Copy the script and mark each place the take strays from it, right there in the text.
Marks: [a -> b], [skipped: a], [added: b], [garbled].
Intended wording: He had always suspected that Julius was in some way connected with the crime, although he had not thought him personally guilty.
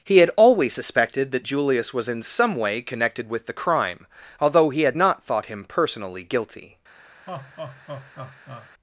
He had always suspected that Julius was in some way connected with the crime, although he had not thought him personally guilty.